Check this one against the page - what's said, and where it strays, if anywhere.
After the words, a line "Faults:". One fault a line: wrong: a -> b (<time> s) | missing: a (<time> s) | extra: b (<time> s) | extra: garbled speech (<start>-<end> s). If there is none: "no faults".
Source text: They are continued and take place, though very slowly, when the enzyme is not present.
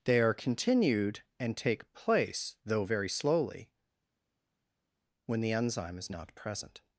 They are continued and take place, though very slowly, when the enzyme is not present.
Faults:
no faults